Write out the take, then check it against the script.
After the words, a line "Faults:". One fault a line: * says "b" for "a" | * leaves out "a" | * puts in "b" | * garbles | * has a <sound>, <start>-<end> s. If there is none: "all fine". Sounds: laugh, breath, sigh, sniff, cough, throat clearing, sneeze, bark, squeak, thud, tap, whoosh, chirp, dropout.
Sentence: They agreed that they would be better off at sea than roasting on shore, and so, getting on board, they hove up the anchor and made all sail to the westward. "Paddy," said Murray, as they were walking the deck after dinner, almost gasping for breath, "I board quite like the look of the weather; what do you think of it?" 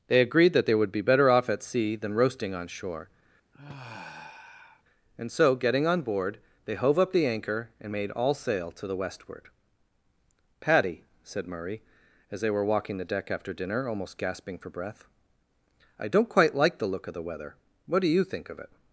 They agreed that they would be better off at sea than roasting on shore, and so, getting on board, they hove up the anchor and made all sail to the westward. "Paddy," said Murray, as they were walking the deck after dinner, almost gasping for breath, "I don't quite like the look of the weather; what do you think of it?"
Faults:
* has a sigh, 3.5-4.8 s
* says "don't" for "board"